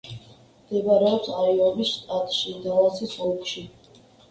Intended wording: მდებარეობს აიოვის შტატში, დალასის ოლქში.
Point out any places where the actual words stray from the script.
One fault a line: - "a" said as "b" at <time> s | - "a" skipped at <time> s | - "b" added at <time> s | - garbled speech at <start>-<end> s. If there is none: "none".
none